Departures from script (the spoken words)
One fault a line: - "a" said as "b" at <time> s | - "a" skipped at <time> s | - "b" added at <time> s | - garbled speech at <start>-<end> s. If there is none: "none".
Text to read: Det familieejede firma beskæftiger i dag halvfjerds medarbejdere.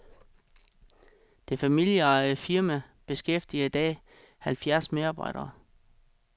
none